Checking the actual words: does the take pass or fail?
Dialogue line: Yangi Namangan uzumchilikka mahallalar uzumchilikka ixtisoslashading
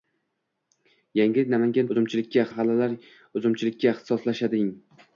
pass